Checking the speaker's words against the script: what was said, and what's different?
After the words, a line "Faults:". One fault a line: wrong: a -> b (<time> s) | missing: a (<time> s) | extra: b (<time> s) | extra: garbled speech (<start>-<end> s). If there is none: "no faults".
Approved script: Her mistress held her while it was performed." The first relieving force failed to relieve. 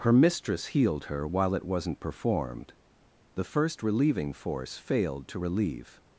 Her mistress healed her while it wasn't performed." The first relieving force failed to relieve.
Faults:
wrong: held -> healed (0.7 s)
wrong: was -> wasn't (1.6 s)